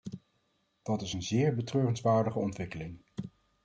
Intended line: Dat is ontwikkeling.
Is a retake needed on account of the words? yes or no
yes